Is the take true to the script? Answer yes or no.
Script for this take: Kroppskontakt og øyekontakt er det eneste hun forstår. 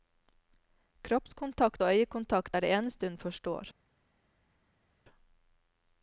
yes